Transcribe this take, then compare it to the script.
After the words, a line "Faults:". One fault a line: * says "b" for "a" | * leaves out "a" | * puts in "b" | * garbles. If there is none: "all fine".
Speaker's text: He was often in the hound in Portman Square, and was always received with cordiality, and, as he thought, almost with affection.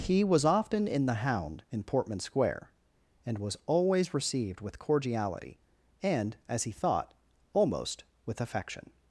He was often in the hound in Portman Square, and was always received with cordiality, and, as he thought, almost with affection.
Faults:
all fine